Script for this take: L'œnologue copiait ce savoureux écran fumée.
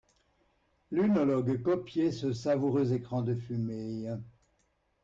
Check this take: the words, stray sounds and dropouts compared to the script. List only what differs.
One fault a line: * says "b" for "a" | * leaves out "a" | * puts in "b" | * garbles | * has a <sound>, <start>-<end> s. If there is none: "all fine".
* puts in "de"